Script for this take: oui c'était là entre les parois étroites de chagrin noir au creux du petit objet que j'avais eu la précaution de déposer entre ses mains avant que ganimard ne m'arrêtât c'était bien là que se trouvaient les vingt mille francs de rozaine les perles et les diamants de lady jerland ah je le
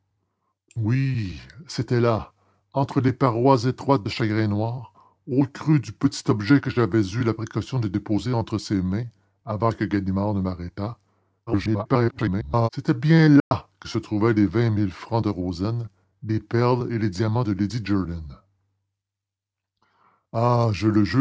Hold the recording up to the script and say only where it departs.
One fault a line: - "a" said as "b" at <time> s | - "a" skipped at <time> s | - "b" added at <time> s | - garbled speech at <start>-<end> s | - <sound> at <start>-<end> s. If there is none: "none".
- garbled speech at 11.5-12.7 s
- dropout at 13.4-13.5 s